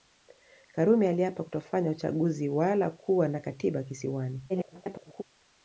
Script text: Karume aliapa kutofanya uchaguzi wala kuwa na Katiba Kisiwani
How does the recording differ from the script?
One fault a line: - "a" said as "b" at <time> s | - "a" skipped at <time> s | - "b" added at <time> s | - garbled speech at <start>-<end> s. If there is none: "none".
- garbled speech at 4.5-5.2 s